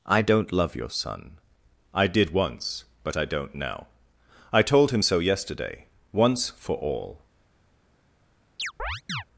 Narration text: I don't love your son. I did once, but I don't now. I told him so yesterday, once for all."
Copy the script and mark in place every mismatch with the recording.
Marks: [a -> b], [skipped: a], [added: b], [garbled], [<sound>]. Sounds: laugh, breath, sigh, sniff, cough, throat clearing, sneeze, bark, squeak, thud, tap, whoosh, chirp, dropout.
I don't love your son. I did once, but I don't now. I told him so yesterday, once for all." [chirp]